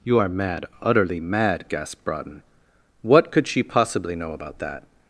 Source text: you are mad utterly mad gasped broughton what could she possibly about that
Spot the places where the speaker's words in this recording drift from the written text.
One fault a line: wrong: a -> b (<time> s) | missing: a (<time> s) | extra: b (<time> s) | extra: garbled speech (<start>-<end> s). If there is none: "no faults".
extra: know (4.1 s)